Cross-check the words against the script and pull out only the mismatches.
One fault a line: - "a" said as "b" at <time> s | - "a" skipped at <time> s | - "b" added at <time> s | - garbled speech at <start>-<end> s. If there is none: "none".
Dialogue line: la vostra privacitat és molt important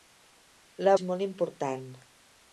- "vostra privacitat" skipped at 0.9 s